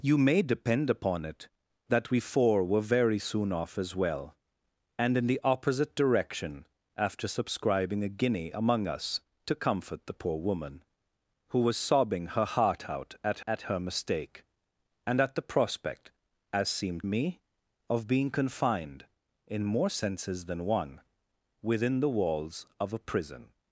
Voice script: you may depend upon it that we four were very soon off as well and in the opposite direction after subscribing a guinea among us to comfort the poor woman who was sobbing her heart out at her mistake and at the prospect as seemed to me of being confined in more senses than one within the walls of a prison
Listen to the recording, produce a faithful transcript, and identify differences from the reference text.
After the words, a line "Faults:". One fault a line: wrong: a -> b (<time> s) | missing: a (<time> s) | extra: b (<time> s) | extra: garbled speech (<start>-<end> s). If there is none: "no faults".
you may depend upon it that we four were very soon off as well and in the opposite direction after subscribing a guinea among us to comfort the poor woman who was sobbing her heart out at at her mistake and at the prospect as seemed me of being confined in more senses than one within the walls of a prison
Faults:
extra: at (13.5 s)
missing: to (17.0 s)